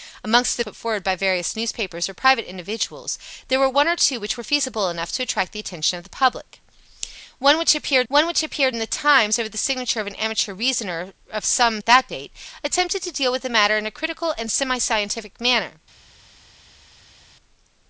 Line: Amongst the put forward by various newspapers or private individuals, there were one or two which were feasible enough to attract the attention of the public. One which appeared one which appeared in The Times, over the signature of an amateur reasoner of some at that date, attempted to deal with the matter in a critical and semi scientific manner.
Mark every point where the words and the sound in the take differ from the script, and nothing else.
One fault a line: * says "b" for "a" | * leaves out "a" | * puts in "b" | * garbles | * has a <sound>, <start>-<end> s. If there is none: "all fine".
all fine